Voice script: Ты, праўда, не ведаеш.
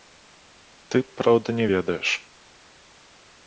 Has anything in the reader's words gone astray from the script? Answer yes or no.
no